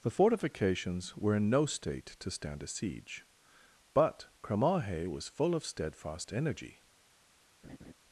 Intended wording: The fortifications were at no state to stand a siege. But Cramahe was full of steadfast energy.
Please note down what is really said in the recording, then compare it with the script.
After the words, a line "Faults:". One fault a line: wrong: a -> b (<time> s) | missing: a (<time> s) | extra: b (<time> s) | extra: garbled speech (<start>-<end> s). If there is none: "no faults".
The fortifications were in no state to stand a siege. But Cramahe was full of steadfast energy.
Faults:
wrong: at -> in (1.4 s)